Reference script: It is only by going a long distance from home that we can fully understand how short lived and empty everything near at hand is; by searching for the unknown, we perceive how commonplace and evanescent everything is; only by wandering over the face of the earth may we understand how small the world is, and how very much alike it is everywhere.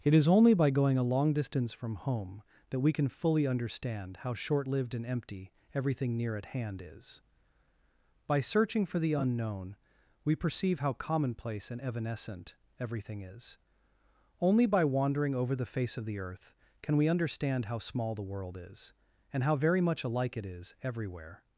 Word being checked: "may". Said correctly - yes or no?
no